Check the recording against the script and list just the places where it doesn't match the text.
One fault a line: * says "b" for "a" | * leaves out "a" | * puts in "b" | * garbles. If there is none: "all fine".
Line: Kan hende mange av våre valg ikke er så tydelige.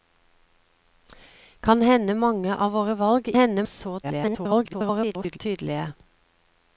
* says "hende" for "ikke"
* garbles